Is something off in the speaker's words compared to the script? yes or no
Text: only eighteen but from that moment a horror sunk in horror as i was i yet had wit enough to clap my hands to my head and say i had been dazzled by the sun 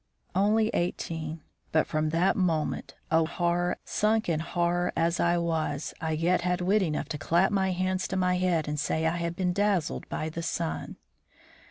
no